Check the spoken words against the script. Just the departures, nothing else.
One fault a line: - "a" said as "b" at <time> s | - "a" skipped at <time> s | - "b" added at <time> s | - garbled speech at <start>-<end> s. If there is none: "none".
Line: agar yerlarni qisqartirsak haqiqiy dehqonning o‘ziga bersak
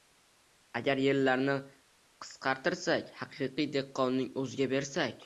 none